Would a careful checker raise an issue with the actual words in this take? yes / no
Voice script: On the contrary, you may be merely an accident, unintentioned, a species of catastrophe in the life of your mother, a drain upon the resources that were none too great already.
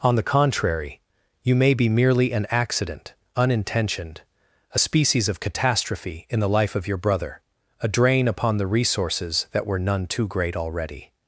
yes